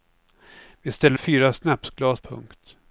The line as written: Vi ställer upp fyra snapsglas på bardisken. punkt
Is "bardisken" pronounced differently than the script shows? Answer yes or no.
yes